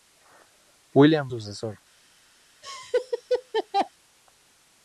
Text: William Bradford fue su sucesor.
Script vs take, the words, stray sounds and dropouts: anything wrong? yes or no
yes